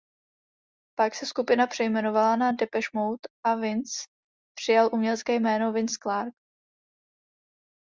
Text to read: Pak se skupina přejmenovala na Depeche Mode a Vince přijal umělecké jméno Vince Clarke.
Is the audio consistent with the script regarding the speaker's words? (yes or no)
yes